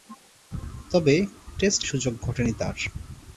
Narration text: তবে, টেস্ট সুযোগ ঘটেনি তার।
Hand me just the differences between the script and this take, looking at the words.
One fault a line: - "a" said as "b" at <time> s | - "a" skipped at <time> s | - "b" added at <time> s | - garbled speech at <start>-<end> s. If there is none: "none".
none